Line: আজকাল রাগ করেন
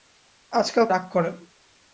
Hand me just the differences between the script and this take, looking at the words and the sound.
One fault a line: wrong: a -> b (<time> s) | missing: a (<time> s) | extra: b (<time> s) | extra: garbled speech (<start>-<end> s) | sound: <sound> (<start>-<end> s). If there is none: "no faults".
no faults